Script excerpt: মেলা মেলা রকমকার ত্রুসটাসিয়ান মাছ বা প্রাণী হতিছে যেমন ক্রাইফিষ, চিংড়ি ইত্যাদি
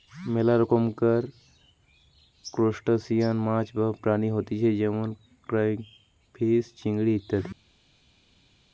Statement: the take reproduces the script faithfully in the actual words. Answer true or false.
false